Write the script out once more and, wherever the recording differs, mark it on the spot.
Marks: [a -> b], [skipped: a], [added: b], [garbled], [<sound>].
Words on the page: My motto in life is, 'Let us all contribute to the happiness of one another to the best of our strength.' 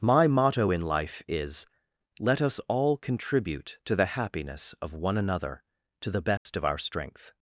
My motto in life is, 'Let us all contribute to the happiness of one another to the best [dropout] of our strength.'